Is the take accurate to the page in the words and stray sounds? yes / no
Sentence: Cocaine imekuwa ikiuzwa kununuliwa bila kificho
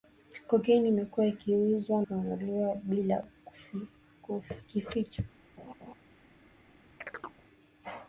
no